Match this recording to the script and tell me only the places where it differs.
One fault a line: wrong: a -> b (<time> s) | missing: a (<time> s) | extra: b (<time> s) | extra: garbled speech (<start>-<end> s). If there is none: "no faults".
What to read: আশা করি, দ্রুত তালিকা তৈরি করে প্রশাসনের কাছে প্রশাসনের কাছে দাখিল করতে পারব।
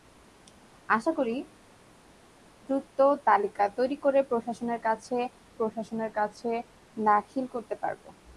no faults